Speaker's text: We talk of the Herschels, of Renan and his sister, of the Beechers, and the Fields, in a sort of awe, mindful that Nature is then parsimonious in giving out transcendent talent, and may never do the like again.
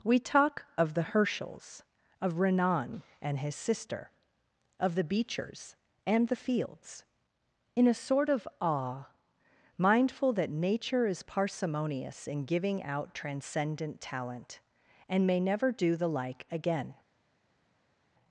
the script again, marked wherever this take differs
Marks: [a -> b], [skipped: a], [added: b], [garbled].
We talk of the Herschels, of Renan and his sister, of the Beechers, and the Fields, in a sort of awe, mindful that Nature is [skipped: then] parsimonious in giving out transcendent talent, and may never do the like again.